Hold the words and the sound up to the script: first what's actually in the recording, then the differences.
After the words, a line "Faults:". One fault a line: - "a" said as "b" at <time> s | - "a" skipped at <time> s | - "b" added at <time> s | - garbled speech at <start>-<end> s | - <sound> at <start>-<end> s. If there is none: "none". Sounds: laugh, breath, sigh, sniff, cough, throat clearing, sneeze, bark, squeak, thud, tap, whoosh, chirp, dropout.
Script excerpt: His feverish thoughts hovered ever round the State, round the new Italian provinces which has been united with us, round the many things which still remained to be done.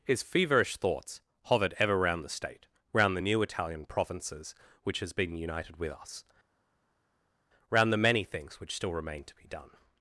His feverish thoughts hovered ever round the State, round the new Italian provinces which has been united with us, round the many things which still remained to be done.
Faults:
none